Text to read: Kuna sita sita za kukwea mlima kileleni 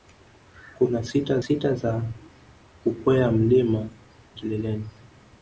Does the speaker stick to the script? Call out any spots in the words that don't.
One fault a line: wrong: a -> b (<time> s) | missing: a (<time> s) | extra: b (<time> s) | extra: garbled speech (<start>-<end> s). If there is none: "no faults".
no faults